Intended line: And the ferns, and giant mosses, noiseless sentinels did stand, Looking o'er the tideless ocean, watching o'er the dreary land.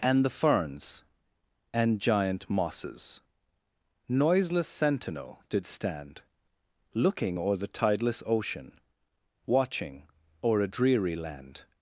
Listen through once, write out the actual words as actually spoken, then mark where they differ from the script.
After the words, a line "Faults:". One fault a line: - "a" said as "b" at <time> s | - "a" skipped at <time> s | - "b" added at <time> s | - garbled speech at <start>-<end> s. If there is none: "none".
And the ferns, and giant mosses, noiseless sentinel did stand, Looking o'er the tideless ocean, watching o'er a dreary land.
Faults:
- "sentinels" said as "sentinel" at 4.7 s
- "the" said as "a" at 10.6 s